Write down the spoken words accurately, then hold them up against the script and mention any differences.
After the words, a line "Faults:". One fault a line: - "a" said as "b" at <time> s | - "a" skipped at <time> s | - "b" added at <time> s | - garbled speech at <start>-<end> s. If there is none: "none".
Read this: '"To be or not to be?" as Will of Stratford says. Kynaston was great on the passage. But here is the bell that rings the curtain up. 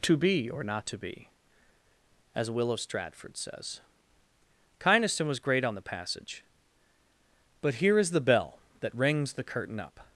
'"To be or not to be?" as Will of Stratford says. Kynaston was great on the passage. But here is the bell that rings the curtain up.
Faults:
none